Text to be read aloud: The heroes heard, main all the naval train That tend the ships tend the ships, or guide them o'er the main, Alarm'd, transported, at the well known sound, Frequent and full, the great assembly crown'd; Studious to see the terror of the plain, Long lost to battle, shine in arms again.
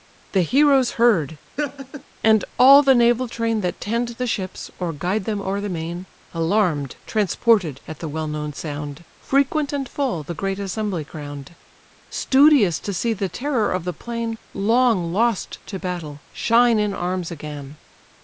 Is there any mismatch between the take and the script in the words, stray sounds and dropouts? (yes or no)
yes